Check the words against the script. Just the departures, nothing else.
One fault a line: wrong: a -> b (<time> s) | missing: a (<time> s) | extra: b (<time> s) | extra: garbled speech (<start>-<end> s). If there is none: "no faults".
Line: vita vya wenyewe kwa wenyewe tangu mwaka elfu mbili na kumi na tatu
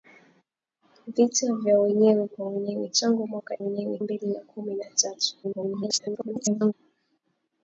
wrong: elfu -> wenyewe (3.6 s)
extra: garbled speech (5.4-6.7 s)